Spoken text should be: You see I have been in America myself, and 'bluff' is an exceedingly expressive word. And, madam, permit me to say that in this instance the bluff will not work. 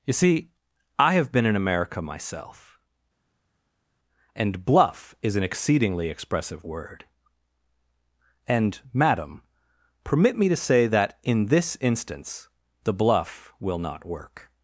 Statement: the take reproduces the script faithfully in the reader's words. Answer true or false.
true